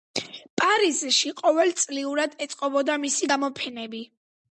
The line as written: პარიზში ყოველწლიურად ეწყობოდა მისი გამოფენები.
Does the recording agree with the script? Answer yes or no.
yes